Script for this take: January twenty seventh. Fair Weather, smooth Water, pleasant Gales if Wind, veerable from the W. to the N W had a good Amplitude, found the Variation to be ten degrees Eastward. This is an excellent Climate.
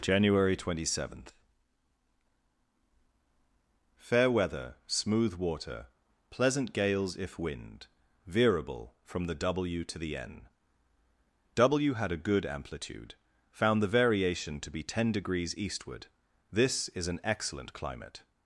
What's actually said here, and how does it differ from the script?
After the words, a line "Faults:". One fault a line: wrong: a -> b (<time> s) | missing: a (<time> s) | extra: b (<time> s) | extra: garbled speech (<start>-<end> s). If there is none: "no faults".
January twenty seventh. Fair Weather, smooth Water, pleasant Gales if Wind, veerable from the W. to the N W had a good Amplitude, found the Variation to be ten degrees Eastward. This is an excellent Climate.
Faults:
no faults